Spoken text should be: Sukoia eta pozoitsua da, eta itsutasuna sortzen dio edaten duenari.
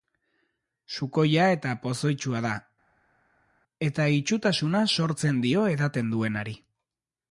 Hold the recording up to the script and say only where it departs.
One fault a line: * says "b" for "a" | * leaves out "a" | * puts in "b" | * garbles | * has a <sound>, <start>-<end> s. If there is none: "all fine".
all fine